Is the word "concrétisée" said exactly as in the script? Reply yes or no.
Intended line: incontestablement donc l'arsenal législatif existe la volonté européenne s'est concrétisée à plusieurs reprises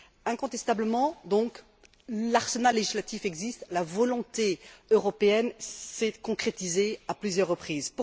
yes